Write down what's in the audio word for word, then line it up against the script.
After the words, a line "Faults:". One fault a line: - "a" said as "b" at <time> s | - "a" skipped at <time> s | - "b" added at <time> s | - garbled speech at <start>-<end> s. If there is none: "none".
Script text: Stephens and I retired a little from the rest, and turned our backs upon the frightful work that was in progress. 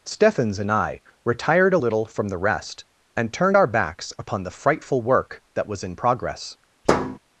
Stephens and I retired a little from the rest, and turned our backs upon the frightful work that was in progress.
Faults:
none